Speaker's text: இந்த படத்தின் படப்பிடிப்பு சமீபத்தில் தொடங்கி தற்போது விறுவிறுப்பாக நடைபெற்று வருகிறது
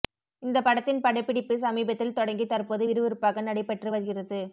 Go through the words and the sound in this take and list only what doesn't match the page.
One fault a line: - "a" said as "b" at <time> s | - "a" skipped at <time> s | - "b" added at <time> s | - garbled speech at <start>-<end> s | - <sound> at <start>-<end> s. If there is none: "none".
none